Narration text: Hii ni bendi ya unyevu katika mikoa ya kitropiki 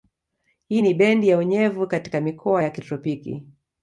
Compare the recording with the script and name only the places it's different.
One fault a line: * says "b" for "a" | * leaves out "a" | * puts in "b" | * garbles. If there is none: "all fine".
all fine